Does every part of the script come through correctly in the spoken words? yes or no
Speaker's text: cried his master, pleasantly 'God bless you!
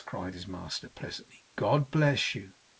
yes